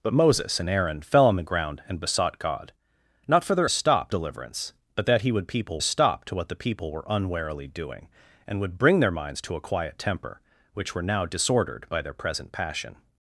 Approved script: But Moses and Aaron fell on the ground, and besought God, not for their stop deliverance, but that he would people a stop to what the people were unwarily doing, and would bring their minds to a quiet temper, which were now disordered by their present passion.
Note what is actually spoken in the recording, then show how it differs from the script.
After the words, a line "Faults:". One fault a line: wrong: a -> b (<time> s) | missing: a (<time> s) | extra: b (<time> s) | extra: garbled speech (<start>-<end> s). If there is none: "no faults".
But Moses and Aaron fell on the ground, and besought God, not for their stop deliverance, but that he would people a stop to what the people were unwarily doing, and would bring their minds to a quiet temper, which were now disordered by their present passion.
Faults:
no faults